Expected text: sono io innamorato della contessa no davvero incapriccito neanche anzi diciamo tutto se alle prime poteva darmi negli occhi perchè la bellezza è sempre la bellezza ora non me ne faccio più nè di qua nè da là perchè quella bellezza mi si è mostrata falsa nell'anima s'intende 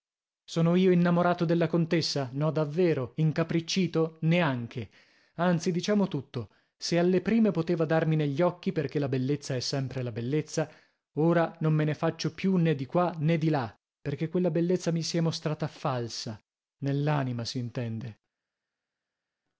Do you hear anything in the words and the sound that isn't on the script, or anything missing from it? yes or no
yes